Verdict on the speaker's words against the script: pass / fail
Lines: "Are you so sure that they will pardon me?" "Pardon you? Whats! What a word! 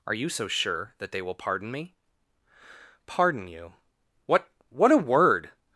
fail